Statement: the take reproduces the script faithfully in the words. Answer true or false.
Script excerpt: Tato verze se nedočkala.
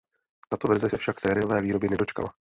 false